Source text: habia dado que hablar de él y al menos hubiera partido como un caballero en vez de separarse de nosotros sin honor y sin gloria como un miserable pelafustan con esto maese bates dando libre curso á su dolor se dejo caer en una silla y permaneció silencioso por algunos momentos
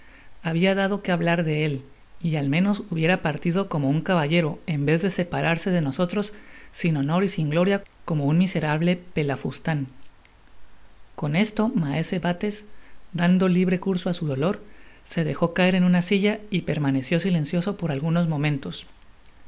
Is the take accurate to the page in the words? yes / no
yes